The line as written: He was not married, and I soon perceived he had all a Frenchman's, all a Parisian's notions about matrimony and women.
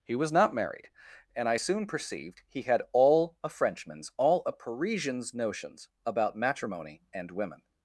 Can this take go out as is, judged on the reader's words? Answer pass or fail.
pass